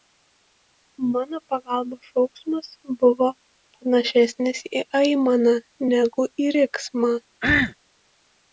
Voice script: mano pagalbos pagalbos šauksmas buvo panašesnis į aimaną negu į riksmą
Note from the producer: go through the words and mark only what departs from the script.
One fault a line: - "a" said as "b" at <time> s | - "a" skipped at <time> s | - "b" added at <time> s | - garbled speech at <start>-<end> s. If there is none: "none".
- "pagalbos" skipped at 2.1 s